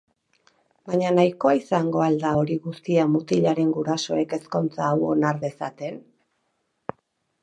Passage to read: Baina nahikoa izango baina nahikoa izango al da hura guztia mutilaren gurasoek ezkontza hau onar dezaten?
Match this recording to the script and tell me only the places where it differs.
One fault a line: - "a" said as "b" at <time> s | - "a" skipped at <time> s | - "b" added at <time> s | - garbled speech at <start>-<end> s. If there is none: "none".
- "baina nahikoa izango" skipped at 2.0 s
- "hura" said as "hori" at 2.4 s